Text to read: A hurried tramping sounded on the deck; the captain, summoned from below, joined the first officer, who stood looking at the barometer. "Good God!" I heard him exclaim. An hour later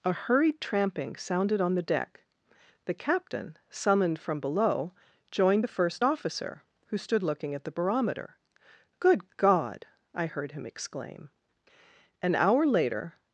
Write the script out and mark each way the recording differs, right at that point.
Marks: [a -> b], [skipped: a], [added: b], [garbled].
A hurried tramping sounded on the deck; the captain, summoned from below, joined the first officer, who stood looking at the barometer. "Good God!" I heard him exclaim. An hour later